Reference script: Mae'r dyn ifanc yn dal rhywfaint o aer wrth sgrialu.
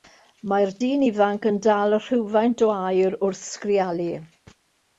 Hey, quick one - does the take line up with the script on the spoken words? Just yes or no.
yes